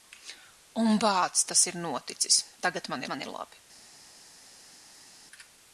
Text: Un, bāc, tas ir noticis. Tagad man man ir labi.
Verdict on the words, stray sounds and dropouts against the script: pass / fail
pass